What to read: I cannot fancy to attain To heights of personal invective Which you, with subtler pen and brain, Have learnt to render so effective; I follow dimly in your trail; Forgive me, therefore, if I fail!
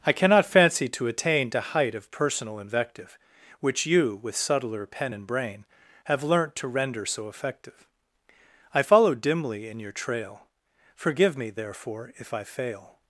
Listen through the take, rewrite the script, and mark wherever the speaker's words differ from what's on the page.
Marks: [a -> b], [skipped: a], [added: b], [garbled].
I cannot fancy to attain To [heights -> height] of personal invective Which you, with subtler pen and brain, Have learnt to render so effective; I follow dimly in your trail; Forgive me, therefore, if I fail!